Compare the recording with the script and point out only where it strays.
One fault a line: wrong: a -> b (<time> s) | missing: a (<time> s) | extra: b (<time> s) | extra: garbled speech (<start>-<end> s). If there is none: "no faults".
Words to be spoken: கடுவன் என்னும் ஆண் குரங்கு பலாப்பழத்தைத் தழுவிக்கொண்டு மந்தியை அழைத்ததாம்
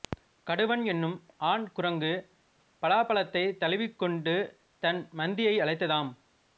extra: தன் (4.8 s)